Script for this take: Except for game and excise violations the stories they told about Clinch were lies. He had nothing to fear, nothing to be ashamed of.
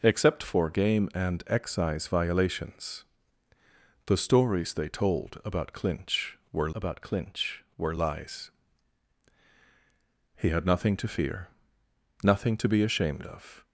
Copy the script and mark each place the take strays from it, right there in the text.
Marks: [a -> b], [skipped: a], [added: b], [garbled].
Except for game and excise violations the stories they told about Clinch were [added: about Clinch were] lies. He had nothing to fear, nothing to be ashamed of.